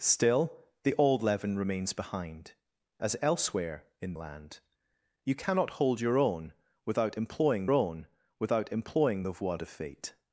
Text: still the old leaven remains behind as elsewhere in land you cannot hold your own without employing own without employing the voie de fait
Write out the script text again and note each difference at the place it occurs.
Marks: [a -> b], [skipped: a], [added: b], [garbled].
still the old leaven remains behind as elsewhere in land you cannot hold your own without employing own without employing the voie de fait